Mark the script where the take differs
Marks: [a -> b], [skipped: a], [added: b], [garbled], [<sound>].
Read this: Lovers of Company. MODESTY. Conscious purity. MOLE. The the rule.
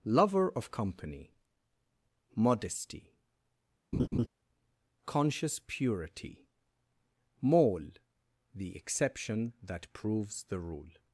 [Lovers -> Lover] of Company. MODESTY. [laugh] Conscious purity. MOLE. The [added: exception that proves] the rule.